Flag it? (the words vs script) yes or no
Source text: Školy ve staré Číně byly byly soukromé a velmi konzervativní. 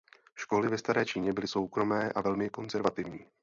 yes